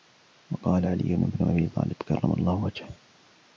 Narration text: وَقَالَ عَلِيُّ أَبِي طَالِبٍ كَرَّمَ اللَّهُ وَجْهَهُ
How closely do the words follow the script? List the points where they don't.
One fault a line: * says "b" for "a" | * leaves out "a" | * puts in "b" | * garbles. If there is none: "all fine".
* puts in "بْنُ"